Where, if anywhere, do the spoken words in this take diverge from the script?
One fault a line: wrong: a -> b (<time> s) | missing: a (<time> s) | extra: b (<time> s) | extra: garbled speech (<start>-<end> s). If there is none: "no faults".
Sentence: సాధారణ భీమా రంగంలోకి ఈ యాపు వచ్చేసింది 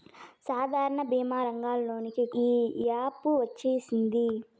no faults